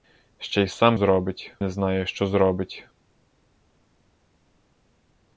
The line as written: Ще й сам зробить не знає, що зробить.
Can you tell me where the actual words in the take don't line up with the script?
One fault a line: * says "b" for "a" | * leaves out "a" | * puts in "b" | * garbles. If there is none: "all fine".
all fine